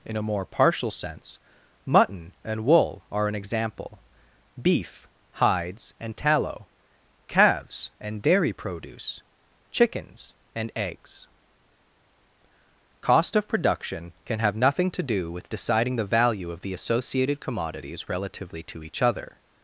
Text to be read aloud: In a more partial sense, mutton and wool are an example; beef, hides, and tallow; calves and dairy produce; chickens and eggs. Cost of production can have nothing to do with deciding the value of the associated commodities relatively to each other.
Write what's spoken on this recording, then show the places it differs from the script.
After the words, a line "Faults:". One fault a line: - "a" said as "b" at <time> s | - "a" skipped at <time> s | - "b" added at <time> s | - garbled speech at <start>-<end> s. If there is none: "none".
In a more partial sense, mutton and wool are an example; beef, hides, and tallow; calves and dairy produce; chickens and eggs. Cost of production can have nothing to do with deciding the value of the associated commodities relatively to each other.
Faults:
none